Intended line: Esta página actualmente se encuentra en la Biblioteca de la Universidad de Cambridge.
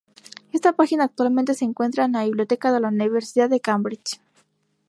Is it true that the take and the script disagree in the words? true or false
false